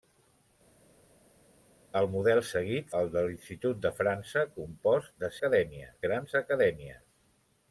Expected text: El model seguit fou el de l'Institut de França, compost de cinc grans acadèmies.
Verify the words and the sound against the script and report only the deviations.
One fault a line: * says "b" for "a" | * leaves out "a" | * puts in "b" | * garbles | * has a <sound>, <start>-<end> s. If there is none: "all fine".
* leaves out "fou"
* says "acadèmies" for "cinc"